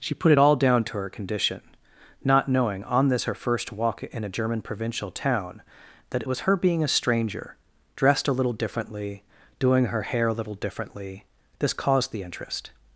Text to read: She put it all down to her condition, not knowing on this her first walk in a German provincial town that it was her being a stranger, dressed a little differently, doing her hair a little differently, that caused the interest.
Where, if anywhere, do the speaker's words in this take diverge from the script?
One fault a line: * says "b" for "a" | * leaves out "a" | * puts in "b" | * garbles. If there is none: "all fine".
* says "this" for "that"